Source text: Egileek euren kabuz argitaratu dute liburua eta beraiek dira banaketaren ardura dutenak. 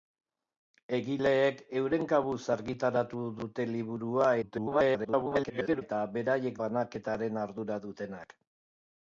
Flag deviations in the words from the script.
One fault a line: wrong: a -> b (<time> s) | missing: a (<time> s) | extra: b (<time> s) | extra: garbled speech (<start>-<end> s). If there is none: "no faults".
extra: garbled speech (4.4-5.8 s)
missing: dira (6.6 s)